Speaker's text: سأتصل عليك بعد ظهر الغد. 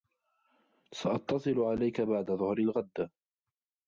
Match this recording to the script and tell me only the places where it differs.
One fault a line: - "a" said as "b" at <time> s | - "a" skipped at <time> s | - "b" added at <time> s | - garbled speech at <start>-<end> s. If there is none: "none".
none